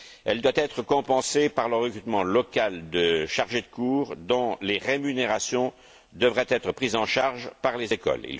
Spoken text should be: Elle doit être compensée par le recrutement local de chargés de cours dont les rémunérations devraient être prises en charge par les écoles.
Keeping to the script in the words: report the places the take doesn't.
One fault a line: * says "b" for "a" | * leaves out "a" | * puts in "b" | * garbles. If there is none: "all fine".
all fine